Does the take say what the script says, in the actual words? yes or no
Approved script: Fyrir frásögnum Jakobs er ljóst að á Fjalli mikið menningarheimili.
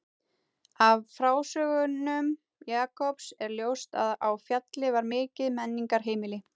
no